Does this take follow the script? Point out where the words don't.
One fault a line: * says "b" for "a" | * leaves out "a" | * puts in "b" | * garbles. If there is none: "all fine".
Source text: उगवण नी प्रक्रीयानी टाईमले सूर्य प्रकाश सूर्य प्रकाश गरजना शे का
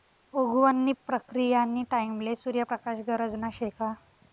* leaves out "सूर्य प्रकाश"